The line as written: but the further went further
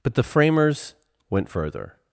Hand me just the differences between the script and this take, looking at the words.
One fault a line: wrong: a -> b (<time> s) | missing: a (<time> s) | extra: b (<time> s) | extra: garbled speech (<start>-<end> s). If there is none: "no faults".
wrong: further -> framers (0.2 s)